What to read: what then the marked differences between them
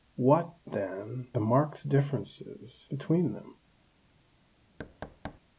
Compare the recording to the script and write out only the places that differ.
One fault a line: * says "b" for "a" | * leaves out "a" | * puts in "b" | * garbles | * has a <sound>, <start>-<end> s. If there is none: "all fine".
* has a thud, 4.8-5.4 s